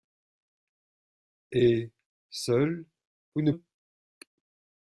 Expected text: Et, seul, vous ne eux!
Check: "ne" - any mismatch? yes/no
no